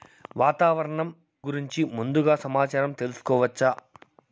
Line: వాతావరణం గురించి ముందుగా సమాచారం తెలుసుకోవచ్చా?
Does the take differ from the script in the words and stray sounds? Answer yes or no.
no